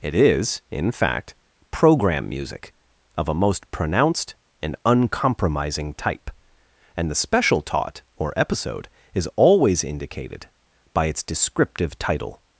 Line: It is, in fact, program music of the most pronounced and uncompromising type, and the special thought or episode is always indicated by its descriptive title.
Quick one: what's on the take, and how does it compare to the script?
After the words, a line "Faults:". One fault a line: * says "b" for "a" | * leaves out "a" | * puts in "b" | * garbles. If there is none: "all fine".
It is, in fact, program music of a most pronounced and uncompromising type, and the special taught or episode is always indicated by its descriptive title.
Faults:
* says "a" for "the"
* says "taught" for "thought"